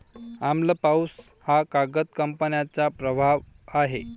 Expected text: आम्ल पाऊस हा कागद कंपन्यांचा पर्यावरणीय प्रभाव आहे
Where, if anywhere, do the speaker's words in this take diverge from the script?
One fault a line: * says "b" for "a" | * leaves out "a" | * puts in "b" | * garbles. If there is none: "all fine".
* leaves out "पर्यावरणीय"